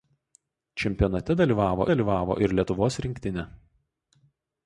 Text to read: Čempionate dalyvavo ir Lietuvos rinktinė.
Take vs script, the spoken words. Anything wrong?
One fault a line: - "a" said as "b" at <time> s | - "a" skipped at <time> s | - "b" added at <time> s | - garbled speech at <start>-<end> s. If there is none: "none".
- "dalyvavo" added at 1.9 s